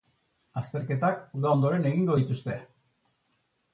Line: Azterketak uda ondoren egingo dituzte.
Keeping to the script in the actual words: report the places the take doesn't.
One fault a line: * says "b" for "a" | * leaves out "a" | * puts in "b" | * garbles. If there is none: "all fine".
all fine